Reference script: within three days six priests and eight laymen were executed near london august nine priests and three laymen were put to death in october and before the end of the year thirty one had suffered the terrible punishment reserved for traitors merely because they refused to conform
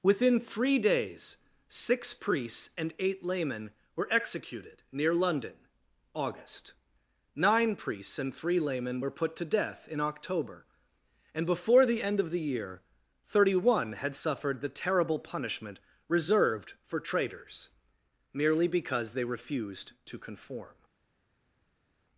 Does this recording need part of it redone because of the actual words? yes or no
no